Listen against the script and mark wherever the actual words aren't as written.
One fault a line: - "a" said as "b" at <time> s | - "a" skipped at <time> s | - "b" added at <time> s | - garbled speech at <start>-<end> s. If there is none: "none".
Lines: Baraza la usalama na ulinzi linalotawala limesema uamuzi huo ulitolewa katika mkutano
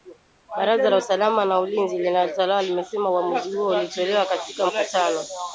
none